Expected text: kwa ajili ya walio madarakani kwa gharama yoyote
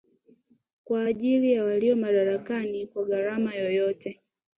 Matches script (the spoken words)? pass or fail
pass